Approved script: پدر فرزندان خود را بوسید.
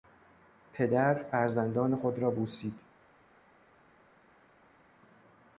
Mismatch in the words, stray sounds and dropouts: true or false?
false